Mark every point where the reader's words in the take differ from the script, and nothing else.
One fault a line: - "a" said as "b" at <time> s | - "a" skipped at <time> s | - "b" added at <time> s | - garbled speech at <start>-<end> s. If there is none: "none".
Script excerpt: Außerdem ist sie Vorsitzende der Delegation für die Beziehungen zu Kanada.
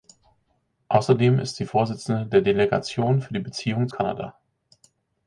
- "zu" skipped at 3.9 s